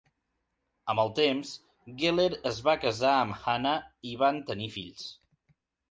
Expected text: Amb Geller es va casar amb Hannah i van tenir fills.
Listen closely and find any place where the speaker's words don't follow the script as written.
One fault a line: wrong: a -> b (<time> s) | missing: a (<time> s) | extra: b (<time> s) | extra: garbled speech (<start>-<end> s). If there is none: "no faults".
extra: el temps (1.0 s)